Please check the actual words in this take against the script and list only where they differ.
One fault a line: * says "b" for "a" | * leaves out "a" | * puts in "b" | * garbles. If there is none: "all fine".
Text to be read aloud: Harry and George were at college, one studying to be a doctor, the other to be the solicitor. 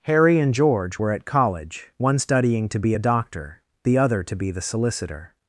all fine